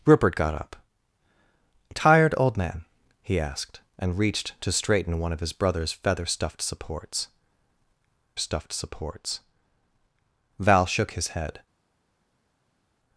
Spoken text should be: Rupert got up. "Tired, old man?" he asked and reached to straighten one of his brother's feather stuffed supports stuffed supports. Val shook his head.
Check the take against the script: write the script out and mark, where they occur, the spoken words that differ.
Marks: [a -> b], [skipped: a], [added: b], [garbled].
Rupert got up. "Tired, old man?" he asked and reached to straighten one of his brother's feather stuffed supports stuffed supports. Val shook his head.